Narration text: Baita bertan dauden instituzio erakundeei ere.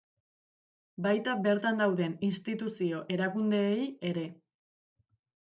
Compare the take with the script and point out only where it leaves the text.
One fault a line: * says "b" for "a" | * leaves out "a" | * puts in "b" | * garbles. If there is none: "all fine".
all fine